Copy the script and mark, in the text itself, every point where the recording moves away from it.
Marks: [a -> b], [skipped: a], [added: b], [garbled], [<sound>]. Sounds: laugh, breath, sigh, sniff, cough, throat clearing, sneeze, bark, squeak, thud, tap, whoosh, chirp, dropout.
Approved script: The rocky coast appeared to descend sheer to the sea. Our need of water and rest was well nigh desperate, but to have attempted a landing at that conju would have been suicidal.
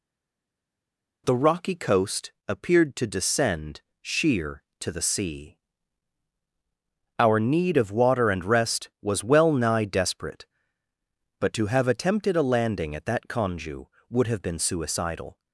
The rocky coast appeared to descend sheer to the sea. Our need of water and rest was well nigh desperate, but to have attempted a landing at that conju would have been suicidal.